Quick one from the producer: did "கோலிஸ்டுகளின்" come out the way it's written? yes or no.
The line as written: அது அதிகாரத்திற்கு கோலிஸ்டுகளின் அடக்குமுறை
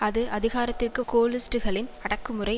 yes